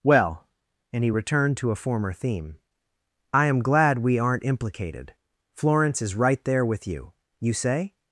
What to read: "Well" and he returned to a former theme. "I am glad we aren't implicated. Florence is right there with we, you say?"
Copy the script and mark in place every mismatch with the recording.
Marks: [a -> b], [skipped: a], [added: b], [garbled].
"Well" and he returned to a former theme. "I am glad we aren't implicated. Florence is right there with [we, -> you] you say?"